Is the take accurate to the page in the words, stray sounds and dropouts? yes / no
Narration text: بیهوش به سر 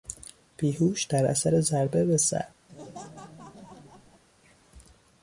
no